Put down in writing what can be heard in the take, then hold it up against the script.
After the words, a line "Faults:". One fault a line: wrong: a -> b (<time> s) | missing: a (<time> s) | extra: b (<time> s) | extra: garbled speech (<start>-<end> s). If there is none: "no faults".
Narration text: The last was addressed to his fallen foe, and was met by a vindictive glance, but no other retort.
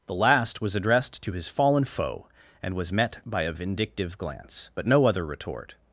The last was addressed to his fallen foe, and was met by a vindictive glance, but no other retort.
Faults:
no faults